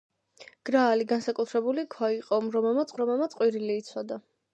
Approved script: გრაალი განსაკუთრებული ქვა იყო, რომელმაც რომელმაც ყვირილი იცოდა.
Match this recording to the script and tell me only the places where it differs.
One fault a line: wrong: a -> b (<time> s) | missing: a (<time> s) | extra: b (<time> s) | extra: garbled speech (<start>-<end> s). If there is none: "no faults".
no faults